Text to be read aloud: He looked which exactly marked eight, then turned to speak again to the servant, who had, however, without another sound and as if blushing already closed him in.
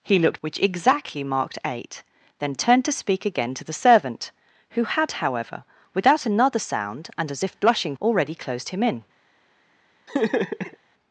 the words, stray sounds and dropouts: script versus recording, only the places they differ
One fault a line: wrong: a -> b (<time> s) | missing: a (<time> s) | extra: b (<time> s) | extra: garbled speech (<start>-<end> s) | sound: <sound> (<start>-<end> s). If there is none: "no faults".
sound: laugh (10.1-10.8 s)